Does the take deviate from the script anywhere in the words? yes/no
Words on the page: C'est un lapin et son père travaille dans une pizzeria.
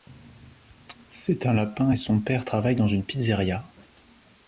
no